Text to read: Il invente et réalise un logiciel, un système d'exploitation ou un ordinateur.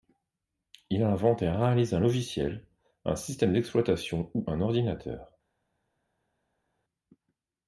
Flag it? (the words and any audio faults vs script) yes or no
no